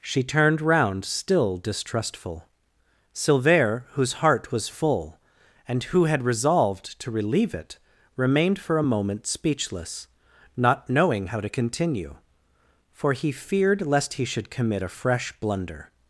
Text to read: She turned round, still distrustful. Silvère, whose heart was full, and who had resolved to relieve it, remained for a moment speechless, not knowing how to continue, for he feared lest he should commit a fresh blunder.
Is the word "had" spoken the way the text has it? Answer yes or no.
yes